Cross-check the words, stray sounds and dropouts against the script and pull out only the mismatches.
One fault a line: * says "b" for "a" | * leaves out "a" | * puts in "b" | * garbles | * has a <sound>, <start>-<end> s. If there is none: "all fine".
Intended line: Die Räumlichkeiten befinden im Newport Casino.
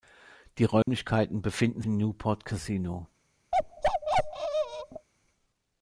* has a dropout, 0.8-0.9 s
* has a bark, 3.5-5.1 s